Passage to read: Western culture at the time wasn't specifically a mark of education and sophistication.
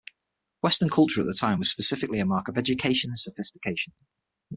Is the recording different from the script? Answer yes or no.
yes